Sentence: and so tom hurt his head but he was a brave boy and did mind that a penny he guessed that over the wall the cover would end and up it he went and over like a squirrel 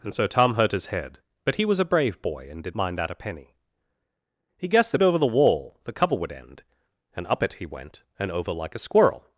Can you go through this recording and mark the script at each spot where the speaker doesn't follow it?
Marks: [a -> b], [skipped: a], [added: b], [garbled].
and so tom hurt his head but he was a brave boy and did mind that a penny he guessed that over the wall the cover would end and up it he went and over like a squirrel